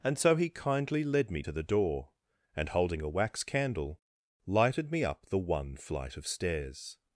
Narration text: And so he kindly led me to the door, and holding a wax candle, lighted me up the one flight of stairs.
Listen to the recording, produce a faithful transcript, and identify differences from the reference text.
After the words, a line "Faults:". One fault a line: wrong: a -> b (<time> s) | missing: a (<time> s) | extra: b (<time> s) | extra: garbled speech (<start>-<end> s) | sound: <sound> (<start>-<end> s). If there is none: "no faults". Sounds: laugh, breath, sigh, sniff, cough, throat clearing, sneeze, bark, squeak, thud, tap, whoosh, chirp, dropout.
And so he kindly led me to the door, and holding a wax candle, lighted me up the one flight of stairs.
Faults:
no faults